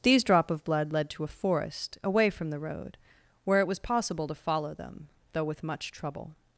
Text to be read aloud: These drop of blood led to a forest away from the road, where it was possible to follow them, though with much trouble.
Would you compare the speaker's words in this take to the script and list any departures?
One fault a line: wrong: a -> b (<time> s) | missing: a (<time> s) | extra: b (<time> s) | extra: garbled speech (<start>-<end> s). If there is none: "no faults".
no faults